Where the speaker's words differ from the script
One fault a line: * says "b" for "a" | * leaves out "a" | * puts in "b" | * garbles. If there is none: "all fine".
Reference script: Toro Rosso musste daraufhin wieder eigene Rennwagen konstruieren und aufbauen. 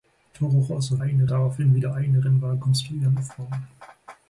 * says "eigene" for "musste"
* leaves out "und"